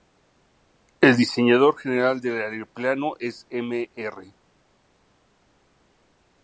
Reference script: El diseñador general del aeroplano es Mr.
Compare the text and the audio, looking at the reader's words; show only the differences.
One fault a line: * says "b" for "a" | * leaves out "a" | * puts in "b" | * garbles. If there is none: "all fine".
all fine